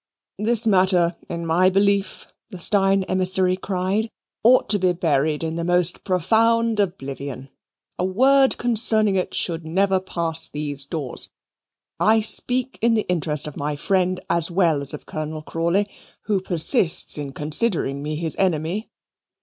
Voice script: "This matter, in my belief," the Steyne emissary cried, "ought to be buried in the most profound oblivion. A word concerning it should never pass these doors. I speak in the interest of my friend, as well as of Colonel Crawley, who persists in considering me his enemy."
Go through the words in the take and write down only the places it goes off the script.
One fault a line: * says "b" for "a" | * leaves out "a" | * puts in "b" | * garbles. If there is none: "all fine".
all fine